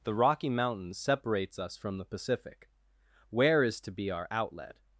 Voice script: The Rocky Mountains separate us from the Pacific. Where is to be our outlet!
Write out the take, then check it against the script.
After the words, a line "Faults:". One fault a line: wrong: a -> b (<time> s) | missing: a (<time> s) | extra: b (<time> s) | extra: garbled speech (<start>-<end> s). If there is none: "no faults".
The Rocky Mountains separates us from the Pacific. Where is to be our outlet!
Faults:
wrong: separate -> separates (1.0 s)